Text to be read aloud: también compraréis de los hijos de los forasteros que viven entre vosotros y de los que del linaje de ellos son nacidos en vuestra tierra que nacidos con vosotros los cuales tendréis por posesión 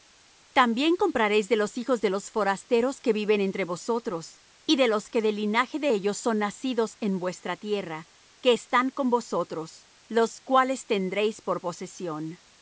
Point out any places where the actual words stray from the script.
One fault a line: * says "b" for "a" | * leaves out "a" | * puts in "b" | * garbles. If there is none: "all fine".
* says "están" for "nacidos"